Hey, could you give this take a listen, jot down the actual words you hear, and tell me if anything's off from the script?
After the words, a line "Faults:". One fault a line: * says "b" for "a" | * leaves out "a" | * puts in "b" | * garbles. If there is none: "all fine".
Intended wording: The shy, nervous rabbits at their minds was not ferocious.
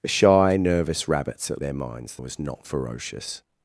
The shy, nervous rabbits at their minds was not ferocious.
Faults:
all fine